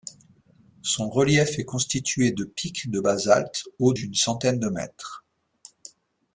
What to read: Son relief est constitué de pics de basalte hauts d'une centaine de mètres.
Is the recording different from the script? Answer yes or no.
no